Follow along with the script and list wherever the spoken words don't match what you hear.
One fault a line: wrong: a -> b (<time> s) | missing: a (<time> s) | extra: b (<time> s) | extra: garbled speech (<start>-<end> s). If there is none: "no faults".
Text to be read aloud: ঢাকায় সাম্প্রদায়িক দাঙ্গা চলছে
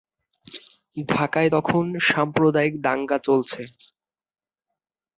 extra: তখন (1.5 s)